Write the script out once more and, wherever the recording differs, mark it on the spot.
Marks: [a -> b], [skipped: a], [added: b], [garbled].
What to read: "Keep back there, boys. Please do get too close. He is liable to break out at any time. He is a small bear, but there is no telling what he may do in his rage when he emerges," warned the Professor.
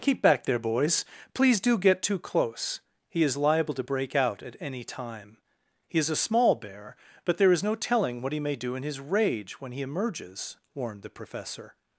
"Keep back there, boys. Please do get too close. He is liable to break out at any time. He is a small bear, but there is no telling what he may do in his rage when he emerges," warned the Professor.